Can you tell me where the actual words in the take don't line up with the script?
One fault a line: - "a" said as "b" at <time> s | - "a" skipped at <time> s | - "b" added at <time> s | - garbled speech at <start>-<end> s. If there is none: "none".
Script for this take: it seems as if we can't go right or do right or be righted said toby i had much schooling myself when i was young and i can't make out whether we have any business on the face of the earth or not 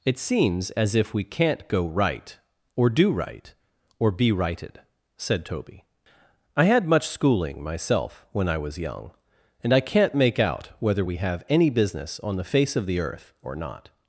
none